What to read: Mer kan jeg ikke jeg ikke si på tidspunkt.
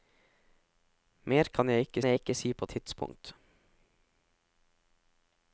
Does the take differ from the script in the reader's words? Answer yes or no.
no